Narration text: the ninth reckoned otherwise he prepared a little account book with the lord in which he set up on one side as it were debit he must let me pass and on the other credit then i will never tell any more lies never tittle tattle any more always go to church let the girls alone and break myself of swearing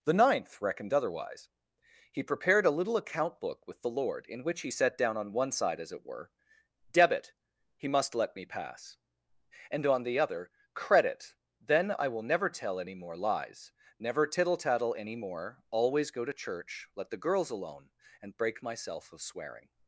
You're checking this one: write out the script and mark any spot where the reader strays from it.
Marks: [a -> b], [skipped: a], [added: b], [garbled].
the ninth reckoned otherwise he prepared a little account book with the lord in which he set [up -> down] on one side as it were debit he must let me pass and on the other credit then i will never tell any more lies never tittle tattle any more always go to church let the girls alone and break myself of swearing